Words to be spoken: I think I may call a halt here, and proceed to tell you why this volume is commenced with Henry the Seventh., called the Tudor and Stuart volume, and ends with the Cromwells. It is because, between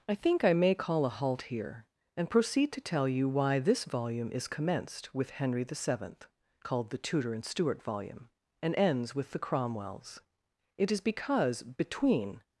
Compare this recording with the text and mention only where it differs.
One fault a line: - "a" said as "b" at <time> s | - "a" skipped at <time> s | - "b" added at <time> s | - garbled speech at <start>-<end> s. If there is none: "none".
none